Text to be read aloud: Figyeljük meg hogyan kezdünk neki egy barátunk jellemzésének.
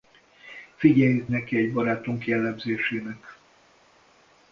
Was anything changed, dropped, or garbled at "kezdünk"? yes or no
yes